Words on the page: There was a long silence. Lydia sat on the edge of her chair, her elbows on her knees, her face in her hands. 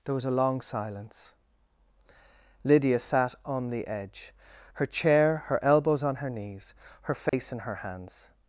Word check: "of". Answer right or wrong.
wrong